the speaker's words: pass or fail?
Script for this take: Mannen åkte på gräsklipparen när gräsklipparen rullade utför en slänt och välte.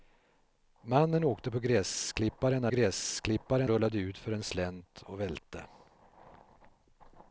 pass